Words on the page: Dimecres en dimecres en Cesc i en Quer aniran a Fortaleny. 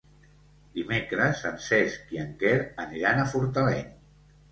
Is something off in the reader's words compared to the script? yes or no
yes